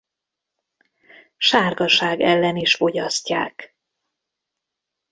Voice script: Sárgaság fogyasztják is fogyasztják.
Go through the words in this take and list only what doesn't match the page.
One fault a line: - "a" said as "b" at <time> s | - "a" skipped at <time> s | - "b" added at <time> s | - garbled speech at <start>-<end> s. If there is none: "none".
- "fogyasztják" said as "ellen" at 2.2 s